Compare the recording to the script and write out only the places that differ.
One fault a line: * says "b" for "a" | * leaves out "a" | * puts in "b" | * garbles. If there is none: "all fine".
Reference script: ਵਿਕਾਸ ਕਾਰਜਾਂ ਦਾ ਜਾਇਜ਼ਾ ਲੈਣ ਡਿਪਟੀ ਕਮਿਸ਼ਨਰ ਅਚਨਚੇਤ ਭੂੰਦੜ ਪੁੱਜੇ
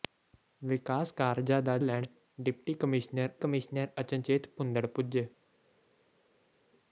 * leaves out "ਜਾਇਜ਼ਾ"
* puts in "ਕਮਿਸ਼ਨਰ"